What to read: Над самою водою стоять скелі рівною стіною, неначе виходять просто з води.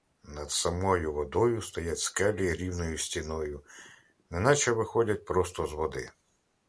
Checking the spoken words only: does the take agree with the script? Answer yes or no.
yes